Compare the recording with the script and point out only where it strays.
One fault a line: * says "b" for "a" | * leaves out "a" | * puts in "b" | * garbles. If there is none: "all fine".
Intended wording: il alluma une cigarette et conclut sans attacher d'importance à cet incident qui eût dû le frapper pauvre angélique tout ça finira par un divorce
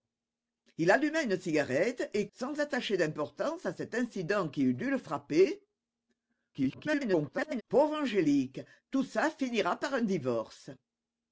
* leaves out "conclut"
* garbles